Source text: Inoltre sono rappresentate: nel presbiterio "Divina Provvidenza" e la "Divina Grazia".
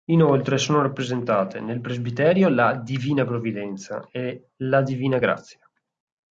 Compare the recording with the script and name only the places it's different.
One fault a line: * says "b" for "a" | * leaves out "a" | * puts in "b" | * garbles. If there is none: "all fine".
* puts in "la"